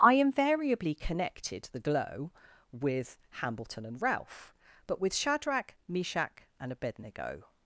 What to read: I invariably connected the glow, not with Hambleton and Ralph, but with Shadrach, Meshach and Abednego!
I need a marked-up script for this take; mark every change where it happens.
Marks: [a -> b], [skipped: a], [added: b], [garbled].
I invariably connected the glow, [skipped: not] with Hambleton and Ralph, but with Shadrach, Meshach and Abednego!